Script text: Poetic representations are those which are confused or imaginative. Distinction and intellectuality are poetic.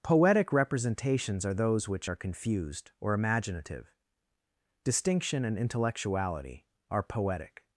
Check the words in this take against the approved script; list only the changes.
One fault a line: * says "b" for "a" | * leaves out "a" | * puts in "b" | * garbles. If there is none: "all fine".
all fine